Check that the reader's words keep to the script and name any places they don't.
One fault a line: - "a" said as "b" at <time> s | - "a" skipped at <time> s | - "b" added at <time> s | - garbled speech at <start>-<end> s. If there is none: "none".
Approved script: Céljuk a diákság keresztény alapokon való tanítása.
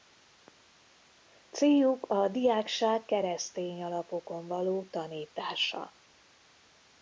none